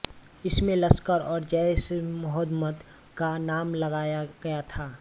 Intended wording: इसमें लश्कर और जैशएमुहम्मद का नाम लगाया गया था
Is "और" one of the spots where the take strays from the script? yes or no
no